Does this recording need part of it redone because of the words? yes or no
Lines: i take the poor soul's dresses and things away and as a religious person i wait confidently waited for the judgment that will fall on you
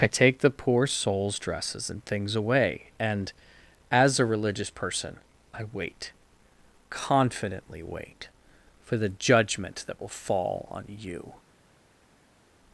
yes